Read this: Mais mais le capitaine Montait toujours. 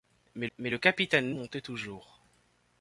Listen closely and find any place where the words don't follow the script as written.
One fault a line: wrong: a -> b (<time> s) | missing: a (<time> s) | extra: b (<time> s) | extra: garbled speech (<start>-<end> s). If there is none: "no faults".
no faults